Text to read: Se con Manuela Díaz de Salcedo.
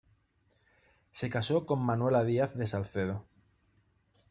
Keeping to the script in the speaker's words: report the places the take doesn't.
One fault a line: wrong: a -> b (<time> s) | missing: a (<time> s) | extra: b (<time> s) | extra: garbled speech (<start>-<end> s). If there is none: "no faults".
extra: casó (1.3 s)